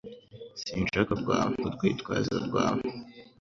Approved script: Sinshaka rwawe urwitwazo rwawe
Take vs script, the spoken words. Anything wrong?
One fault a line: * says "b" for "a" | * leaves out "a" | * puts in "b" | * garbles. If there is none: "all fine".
all fine